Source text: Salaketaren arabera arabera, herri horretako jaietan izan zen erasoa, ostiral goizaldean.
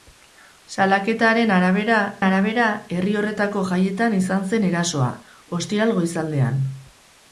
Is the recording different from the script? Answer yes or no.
no